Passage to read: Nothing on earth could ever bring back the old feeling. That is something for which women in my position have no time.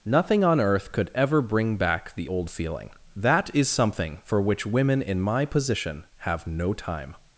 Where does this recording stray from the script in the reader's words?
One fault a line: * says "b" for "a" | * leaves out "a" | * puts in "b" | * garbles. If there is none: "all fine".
all fine